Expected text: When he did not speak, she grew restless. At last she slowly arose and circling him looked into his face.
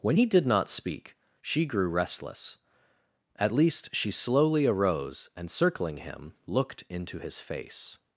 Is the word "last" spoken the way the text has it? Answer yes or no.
no